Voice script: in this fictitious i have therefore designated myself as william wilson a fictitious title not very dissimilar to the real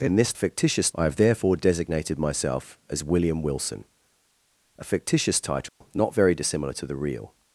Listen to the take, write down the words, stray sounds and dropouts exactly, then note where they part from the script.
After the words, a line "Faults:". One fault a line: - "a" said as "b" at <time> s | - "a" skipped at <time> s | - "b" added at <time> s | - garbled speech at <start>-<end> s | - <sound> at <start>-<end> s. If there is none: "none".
in this fictitious i have therefore designated myself as william wilson a fictitious title not very dissimilar to the real
Faults:
- dropout at 5.7-5.8 s